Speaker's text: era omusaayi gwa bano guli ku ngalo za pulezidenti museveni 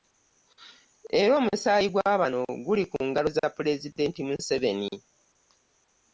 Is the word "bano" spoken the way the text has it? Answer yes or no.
yes